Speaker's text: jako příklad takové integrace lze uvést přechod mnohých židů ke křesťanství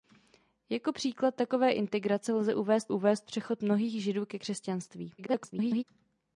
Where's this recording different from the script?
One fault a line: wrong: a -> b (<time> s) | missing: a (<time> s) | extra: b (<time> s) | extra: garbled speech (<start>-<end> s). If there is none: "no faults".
extra: uvést (2.9 s)
extra: garbled speech (5.2-5.8 s)